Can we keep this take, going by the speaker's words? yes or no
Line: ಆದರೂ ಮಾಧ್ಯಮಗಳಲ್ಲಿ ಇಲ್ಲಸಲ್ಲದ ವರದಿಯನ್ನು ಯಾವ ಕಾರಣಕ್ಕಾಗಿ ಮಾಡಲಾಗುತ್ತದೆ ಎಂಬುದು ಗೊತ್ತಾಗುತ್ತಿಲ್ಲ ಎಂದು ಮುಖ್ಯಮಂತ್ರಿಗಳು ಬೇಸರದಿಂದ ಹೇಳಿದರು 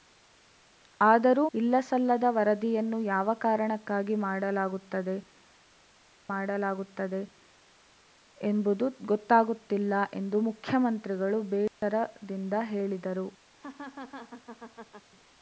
no